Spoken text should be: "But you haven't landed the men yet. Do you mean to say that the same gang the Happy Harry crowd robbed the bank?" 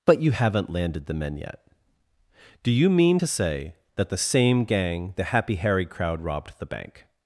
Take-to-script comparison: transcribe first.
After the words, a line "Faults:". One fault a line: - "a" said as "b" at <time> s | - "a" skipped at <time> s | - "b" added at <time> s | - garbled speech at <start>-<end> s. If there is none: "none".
"But you haven't landed the men yet. Do you mean to say that the same gang the Happy Harry crowd robbed the bank?"
Faults:
none